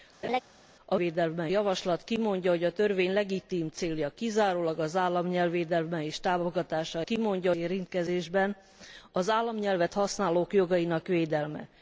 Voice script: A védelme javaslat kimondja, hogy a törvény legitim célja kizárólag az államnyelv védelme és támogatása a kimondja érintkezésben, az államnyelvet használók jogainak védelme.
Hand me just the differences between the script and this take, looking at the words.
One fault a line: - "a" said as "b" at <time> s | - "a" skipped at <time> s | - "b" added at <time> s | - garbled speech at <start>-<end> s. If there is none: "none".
none